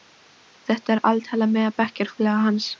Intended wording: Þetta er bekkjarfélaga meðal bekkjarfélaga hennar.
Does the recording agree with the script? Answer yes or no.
no